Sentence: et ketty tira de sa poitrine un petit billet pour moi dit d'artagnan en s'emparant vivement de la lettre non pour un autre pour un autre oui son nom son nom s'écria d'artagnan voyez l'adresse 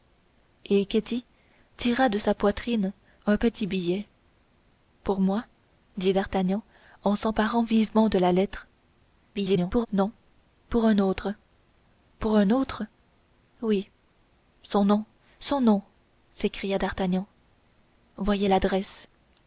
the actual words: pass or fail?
fail